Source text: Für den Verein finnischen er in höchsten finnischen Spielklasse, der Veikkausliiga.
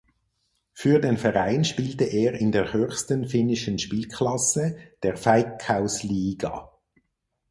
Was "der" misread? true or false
false